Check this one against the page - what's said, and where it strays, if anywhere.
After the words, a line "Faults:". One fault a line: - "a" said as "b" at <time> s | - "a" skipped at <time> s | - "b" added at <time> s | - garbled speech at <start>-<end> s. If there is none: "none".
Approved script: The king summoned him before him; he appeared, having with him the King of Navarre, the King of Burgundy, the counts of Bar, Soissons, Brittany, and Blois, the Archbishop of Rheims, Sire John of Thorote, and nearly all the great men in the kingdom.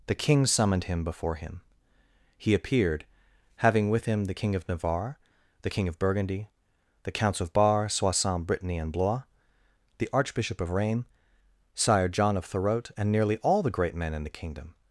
The king summoned him before him; he appeared, having with him the King of Navarre, the King of Burgundy, the counts of Bar, Soissons, Brittany, and Blois, the Archbishop of Rheims, Sire John of Thorote, and nearly all the great men in the kingdom.
Faults:
none